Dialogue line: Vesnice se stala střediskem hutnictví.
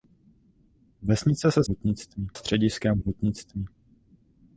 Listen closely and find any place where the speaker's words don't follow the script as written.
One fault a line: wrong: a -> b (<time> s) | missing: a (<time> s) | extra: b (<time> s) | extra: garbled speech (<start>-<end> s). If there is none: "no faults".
wrong: stala -> hutnictví (1.7 s)